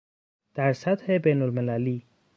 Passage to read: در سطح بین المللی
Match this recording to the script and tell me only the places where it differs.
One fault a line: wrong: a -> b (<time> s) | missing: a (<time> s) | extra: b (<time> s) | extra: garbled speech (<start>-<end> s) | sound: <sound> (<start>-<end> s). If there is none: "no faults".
no faults